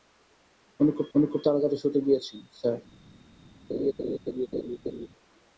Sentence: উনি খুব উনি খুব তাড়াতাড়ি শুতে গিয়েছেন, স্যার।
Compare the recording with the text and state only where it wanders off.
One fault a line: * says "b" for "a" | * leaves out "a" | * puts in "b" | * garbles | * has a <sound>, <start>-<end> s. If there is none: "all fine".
* has a laugh, 3.7-5.1 s